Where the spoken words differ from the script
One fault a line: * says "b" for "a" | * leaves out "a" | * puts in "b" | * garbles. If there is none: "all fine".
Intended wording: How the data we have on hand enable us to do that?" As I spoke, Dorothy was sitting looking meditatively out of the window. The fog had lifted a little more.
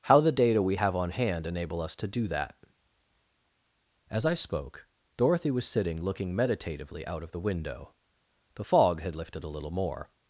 all fine